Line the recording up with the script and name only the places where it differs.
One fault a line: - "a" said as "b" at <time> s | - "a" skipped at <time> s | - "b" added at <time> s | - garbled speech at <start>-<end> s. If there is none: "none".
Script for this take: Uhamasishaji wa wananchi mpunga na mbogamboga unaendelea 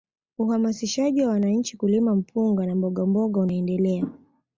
- "kulima" added at 1.7 s